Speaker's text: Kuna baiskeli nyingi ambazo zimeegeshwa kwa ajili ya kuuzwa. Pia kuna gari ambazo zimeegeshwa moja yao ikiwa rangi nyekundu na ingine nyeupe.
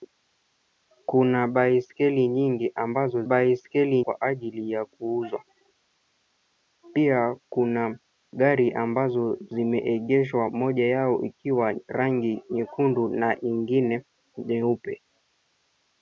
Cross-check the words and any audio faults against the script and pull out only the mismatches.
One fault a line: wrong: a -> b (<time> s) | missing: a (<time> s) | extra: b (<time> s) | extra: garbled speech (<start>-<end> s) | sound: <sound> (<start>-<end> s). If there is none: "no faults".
wrong: zimeegeshwa -> baiskeli (3.2 s)